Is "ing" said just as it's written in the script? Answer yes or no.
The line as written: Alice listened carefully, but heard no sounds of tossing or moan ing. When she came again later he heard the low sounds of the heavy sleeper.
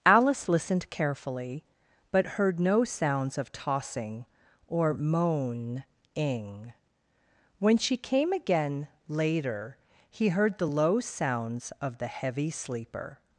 yes